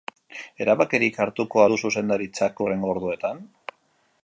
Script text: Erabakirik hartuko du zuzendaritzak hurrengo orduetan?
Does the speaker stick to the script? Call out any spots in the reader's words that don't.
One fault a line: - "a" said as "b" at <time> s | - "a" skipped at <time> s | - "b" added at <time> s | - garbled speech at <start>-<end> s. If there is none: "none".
none